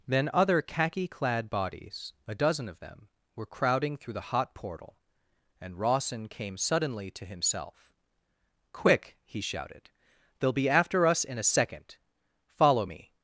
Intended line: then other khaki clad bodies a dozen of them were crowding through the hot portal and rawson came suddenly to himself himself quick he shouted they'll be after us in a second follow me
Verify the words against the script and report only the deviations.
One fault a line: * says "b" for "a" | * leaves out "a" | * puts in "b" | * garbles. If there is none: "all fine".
* leaves out "himself"